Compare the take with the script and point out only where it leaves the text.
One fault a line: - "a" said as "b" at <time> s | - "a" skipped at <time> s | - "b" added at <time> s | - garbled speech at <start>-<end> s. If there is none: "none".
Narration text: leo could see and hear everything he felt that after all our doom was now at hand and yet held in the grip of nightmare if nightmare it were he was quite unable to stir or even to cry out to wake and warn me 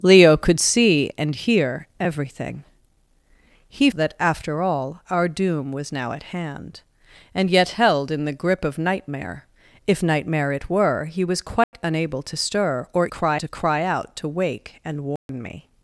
- "felt" skipped at 3.9 s
- "even" said as "cry" at 13.1 s